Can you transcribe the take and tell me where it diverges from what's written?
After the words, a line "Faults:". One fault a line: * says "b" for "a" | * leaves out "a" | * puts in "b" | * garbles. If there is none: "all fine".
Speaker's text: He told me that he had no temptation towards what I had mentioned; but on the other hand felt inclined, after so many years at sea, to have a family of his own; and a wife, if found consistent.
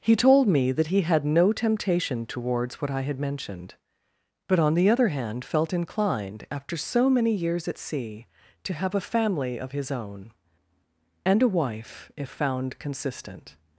He told me that he had no temptation towards what I had mentioned; but on the other hand felt inclined, after so many years at sea, to have a family of his own; and a wife, if found consistent.
Faults:
all fine